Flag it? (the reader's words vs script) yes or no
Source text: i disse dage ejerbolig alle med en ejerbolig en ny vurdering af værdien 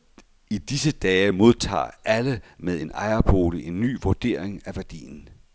yes